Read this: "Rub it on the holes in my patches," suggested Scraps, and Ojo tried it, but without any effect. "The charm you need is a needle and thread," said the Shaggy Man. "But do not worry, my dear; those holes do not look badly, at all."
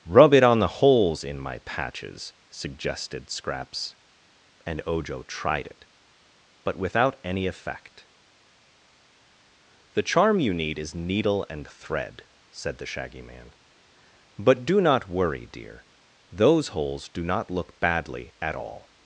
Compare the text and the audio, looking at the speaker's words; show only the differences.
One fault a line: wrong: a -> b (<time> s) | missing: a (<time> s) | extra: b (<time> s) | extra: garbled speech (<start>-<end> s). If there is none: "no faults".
missing: a (10.9 s)
missing: my (15.5 s)